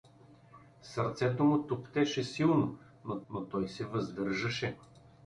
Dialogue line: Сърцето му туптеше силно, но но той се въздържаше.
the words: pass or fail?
pass